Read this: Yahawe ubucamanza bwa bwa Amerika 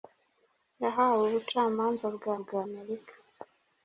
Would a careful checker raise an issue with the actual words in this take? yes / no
no